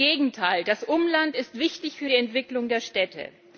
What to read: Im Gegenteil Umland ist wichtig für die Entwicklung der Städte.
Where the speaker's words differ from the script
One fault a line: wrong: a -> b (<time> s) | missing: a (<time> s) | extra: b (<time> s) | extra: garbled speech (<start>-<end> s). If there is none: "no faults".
extra: Das (0.6 s)